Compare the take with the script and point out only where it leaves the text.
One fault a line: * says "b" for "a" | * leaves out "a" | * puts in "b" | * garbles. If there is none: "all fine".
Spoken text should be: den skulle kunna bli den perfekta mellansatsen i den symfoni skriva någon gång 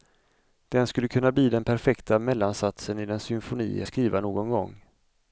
all fine